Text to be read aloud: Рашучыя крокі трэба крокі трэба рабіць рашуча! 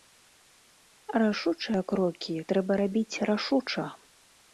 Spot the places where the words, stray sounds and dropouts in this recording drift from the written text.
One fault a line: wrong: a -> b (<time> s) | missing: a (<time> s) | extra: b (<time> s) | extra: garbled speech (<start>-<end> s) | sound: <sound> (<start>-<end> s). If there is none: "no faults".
missing: крокі трэба (2.7 s)